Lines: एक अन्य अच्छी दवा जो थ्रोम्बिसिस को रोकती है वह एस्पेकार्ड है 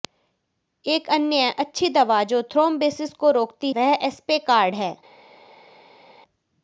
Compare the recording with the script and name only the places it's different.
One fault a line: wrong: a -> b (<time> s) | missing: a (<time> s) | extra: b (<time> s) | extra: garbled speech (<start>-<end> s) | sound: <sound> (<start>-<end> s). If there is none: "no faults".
missing: है (3.7 s)